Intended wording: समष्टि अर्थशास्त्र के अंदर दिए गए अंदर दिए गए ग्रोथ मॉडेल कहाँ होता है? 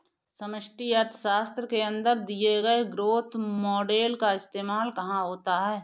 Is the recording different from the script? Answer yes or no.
yes